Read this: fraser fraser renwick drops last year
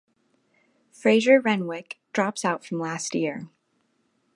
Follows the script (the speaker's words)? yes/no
no